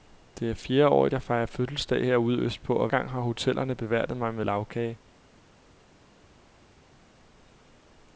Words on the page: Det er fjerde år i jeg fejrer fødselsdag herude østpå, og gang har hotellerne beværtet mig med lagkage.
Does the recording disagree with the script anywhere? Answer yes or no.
no